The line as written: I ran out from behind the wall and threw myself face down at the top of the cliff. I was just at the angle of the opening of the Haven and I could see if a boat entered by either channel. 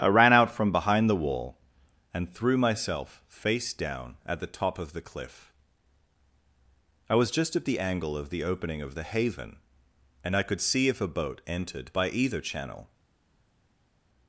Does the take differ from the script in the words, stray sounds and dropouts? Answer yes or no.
no